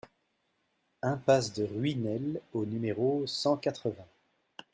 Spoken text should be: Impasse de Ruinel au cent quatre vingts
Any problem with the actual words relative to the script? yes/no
yes